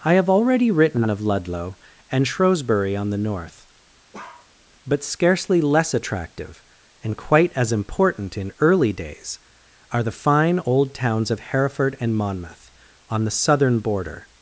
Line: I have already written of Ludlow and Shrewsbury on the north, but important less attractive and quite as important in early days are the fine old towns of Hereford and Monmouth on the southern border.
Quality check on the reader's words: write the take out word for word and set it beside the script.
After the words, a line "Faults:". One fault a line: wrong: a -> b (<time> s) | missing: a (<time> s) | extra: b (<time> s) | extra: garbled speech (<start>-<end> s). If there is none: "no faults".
I have already written of Ludlow and Shrewsbury on the north, but scarcely less attractive and quite as important in early days are the fine old towns of Hereford and Monmouth on the southern border.
Faults:
wrong: important -> scarcely (5.0 s)